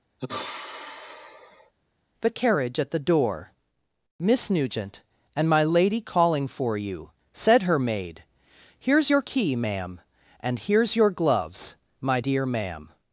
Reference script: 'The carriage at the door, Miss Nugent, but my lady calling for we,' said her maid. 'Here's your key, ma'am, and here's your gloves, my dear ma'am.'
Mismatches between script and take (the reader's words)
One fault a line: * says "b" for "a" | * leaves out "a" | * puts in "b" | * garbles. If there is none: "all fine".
* says "and" for "but"
* says "you" for "we"